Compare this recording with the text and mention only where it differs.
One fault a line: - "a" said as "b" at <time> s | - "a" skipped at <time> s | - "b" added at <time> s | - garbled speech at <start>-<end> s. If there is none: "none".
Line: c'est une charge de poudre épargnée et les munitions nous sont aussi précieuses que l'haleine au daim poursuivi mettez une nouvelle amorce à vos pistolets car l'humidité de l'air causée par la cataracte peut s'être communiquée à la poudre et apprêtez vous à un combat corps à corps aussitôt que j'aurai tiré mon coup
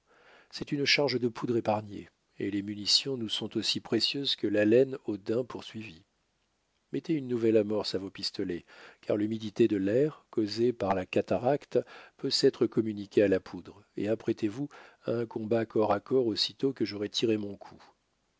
none